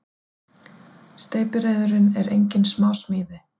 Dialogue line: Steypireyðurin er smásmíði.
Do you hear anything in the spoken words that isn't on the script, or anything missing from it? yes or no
yes